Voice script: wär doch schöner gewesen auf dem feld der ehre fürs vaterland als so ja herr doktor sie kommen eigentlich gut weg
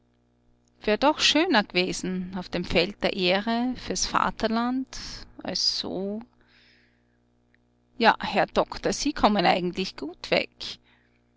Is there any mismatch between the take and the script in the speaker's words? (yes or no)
no